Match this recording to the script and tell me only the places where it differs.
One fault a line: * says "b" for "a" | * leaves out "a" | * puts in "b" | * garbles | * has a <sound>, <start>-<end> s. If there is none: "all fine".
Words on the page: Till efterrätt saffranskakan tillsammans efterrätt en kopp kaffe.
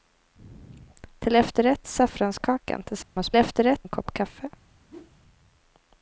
* has a dropout, 3.0-3.2 s
* has a whoosh, 4.9-5.2 s